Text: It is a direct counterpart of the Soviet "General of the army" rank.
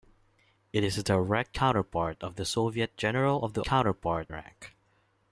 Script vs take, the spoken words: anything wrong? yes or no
yes